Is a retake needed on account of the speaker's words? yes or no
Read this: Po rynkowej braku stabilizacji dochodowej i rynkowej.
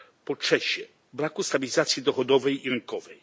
yes